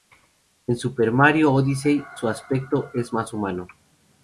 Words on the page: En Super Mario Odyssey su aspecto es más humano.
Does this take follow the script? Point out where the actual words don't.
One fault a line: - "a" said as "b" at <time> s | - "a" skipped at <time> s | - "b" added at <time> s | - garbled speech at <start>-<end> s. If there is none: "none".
none